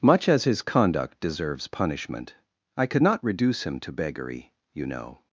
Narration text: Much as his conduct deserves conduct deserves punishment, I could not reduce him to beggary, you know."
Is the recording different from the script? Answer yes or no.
yes